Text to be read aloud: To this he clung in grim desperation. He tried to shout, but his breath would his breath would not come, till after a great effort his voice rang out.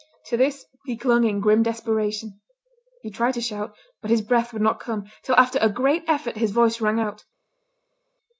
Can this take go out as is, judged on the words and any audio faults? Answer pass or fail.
fail